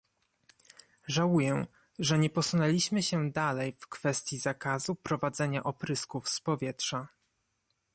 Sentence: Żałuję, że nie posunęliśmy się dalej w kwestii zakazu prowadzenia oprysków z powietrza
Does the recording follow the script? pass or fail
pass